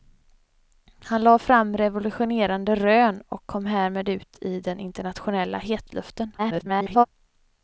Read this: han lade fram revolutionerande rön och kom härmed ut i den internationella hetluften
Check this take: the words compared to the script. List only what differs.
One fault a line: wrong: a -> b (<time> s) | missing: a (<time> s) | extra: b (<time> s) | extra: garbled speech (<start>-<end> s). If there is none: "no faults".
extra: garbled speech (6.4-7.1 s)